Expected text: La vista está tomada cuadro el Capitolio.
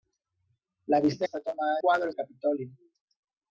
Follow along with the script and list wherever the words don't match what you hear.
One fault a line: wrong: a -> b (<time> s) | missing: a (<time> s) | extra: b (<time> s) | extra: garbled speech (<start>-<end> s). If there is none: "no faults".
no faults